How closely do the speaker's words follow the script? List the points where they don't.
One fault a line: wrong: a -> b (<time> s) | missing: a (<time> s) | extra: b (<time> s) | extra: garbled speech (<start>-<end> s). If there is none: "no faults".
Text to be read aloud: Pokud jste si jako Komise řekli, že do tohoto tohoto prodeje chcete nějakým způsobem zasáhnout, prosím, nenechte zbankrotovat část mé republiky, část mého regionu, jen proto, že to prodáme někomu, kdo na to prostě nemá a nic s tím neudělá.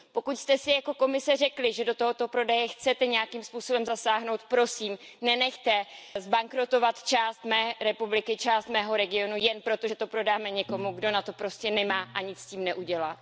missing: tohoto (2.3 s)